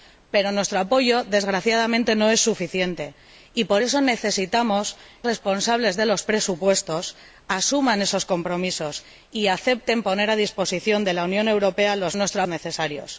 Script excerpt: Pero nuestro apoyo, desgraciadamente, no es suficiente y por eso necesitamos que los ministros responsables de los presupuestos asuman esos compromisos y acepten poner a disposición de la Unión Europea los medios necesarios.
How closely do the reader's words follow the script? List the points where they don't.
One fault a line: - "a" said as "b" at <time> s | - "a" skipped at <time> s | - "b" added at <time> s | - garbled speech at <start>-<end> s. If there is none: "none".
- "que los ministros" skipped at 5.0 s
- "medios" said as "nuestro" at 12.1 s